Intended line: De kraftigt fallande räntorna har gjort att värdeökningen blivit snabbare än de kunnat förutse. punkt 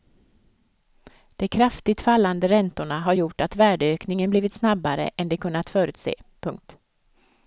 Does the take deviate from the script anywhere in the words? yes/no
no